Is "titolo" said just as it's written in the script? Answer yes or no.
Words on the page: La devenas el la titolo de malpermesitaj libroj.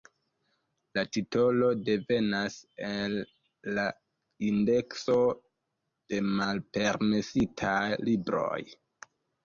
no